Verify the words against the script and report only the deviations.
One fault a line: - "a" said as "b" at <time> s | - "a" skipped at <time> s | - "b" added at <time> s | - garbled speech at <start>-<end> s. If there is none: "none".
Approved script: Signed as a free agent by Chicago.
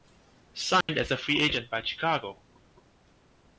none